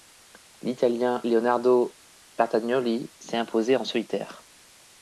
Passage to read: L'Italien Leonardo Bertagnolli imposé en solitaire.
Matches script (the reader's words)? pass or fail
fail